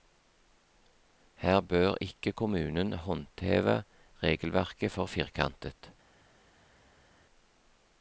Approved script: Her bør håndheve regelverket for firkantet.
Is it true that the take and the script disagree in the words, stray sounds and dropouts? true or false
true